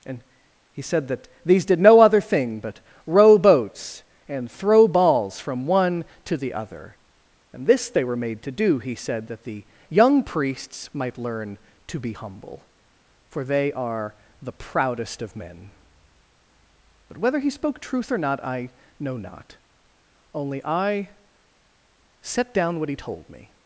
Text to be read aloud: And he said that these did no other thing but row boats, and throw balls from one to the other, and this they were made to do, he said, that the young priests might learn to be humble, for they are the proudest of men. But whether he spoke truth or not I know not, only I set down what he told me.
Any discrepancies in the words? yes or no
no